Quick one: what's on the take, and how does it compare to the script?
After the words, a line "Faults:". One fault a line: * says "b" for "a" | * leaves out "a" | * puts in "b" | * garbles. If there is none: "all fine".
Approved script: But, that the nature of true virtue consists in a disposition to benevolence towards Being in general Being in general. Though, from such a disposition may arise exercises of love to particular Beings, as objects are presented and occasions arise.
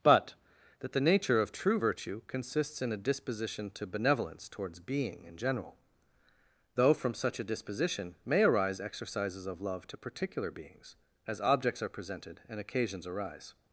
But, that the nature of true virtue consists in a disposition to benevolence towards Being in general. Though, from such a disposition may arise exercises of love to particular Beings, as objects are presented and occasions arise.
Faults:
* leaves out "Being in general"